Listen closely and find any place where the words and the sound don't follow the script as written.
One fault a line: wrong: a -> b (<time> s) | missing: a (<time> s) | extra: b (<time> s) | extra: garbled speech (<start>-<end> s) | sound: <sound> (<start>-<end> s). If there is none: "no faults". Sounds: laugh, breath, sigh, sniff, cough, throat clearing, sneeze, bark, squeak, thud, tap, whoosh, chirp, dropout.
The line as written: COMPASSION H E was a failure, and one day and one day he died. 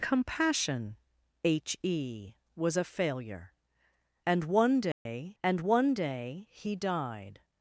sound: dropout (4.9-5.1 s)